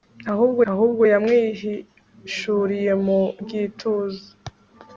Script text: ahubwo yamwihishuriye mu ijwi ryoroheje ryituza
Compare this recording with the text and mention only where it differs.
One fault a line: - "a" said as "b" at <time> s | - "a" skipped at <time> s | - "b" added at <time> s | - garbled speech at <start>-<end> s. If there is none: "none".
- "ahubwo" added at 0.7 s
- "ijwi ryoroheje" skipped at 3.2 s